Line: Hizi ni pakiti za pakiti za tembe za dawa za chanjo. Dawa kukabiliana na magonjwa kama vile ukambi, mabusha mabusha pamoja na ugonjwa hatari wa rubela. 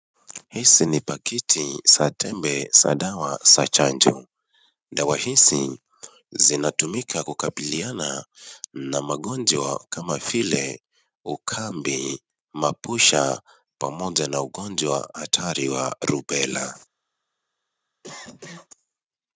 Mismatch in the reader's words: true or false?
true